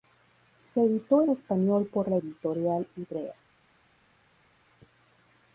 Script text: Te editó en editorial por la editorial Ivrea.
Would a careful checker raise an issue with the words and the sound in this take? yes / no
yes